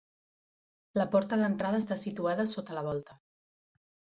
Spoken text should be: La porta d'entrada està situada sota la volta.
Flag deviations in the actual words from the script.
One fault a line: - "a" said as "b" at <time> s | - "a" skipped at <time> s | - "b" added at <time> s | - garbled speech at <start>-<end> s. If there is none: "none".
none